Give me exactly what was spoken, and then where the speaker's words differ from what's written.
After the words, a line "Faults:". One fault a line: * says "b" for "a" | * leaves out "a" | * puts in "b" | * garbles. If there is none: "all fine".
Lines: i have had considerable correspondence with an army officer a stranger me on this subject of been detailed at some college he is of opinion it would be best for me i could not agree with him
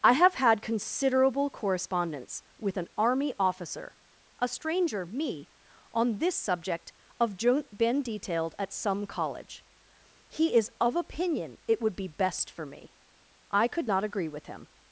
i have had considerable correspondence with an army officer a stranger me on this subject of been detailed at some college he is of opinion it would be best for me i could not agree with him
Faults:
all fine